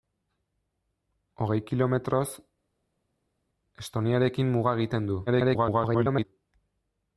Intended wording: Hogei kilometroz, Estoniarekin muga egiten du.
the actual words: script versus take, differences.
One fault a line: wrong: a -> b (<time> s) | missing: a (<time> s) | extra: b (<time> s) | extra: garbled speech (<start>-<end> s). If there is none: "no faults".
extra: garbled speech (5.3-6.2 s)